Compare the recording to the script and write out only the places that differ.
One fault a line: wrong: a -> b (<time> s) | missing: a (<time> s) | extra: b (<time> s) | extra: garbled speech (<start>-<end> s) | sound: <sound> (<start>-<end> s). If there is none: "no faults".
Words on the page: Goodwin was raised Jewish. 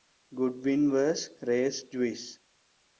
no faults